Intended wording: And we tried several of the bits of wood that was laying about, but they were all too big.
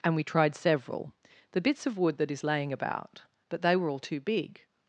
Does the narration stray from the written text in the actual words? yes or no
yes